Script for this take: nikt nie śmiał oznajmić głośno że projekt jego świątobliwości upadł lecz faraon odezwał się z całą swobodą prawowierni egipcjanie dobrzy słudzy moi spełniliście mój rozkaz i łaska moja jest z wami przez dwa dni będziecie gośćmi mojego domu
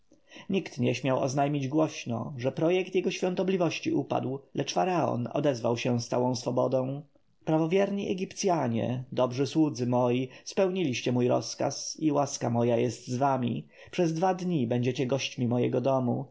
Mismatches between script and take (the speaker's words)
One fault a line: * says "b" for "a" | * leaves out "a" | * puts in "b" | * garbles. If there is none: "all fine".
all fine